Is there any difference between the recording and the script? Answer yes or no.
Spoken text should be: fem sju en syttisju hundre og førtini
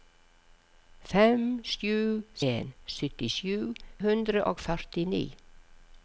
no